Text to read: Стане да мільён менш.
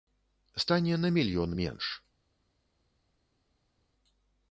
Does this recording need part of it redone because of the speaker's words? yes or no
yes